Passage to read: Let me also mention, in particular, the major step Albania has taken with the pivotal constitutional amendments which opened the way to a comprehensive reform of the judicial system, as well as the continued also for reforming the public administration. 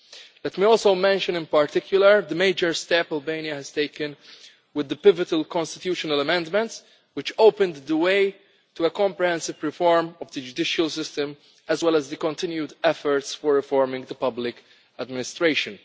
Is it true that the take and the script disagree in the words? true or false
true